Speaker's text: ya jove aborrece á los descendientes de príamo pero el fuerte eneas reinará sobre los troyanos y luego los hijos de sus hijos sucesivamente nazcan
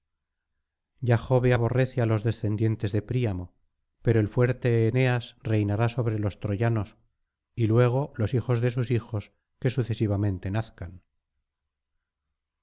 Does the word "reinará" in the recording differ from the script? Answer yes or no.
no